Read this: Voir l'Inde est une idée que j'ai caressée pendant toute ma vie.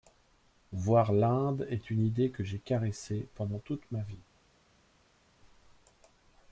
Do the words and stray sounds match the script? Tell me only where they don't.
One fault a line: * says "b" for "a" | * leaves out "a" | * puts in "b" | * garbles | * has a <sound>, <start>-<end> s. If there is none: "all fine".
all fine